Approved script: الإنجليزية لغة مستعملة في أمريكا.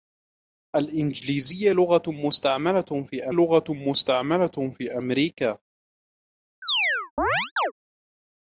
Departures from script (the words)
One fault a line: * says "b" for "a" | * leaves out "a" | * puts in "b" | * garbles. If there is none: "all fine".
* puts in "لغة مستعملة في"